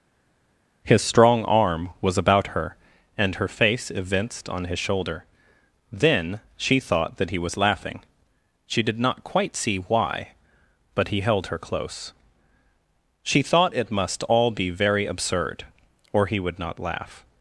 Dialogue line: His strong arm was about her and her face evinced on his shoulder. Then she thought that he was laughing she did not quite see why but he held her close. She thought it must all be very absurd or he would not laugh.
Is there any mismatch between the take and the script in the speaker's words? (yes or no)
no